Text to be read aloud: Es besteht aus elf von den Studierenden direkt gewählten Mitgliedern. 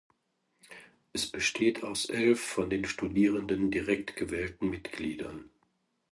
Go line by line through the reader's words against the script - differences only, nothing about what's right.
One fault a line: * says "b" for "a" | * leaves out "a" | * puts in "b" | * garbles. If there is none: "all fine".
all fine